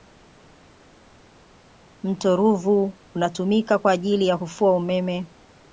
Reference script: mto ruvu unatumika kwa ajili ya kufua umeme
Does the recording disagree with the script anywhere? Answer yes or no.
no